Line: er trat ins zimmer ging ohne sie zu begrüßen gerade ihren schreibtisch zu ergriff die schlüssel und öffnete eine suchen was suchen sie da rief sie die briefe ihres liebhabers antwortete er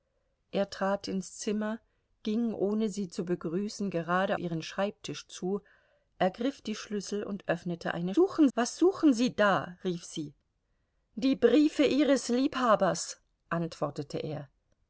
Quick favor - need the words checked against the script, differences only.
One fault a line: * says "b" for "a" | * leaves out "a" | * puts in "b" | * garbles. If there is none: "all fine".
all fine